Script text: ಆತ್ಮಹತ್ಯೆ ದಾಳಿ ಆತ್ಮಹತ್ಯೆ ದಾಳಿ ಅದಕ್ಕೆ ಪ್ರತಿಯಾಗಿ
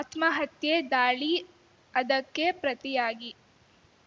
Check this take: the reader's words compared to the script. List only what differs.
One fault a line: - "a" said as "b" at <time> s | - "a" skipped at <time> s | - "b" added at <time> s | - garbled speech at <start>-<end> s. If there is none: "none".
- "ಆತ್ಮಹತ್ಯೆ ದಾಳಿ" skipped at 1.3 s